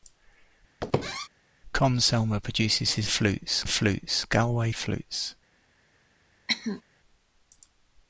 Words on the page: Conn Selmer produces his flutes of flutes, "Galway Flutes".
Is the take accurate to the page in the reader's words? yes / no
yes